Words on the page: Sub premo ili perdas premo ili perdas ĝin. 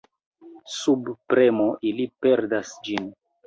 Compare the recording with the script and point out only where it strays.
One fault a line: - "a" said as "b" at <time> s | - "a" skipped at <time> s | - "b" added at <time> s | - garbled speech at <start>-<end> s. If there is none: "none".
- "premo ili perdas" skipped at 2.8 s